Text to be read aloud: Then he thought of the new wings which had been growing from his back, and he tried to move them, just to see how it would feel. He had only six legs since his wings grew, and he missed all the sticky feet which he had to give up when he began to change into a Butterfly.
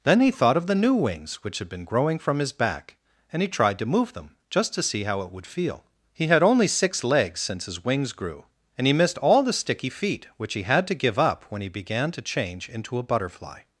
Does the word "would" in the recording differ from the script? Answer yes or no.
no